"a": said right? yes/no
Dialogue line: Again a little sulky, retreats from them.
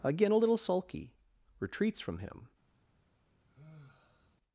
yes